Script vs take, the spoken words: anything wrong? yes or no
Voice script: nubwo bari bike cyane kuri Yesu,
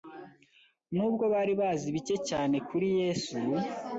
yes